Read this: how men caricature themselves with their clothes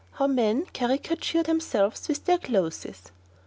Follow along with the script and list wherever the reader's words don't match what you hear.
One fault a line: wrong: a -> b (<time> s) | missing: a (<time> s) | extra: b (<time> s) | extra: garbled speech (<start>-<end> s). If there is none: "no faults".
no faults